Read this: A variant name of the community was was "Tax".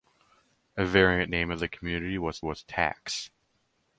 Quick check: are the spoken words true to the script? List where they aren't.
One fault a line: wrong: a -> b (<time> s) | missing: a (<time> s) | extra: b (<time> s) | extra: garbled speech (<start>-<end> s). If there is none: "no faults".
no faults